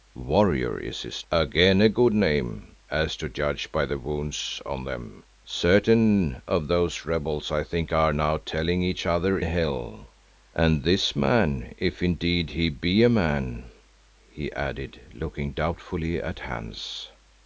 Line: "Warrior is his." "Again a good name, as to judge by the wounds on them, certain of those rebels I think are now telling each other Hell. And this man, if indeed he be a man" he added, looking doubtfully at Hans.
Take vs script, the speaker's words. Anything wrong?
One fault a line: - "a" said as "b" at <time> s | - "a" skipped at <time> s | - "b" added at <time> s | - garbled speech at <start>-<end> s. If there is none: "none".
none